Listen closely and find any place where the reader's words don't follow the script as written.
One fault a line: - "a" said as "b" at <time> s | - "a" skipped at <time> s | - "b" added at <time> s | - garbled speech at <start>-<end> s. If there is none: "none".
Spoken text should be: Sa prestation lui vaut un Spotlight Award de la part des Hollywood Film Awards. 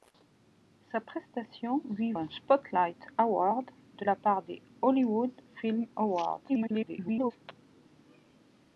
- "vaut" skipped at 2.1 s
- garbled speech at 6.5-7.3 s